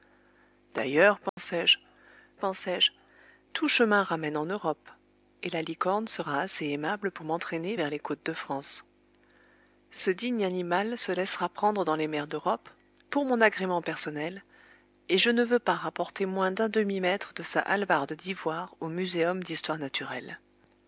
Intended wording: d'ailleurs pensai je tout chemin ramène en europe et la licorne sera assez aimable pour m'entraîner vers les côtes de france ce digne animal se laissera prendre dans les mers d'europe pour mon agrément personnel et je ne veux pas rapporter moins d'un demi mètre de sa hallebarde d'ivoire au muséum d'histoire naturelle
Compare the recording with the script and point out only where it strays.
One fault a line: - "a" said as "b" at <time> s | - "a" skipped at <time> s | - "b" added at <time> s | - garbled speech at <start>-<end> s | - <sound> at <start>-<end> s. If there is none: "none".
- dropout at 1.3-1.4 s
- "pensai je" added at 2.4 s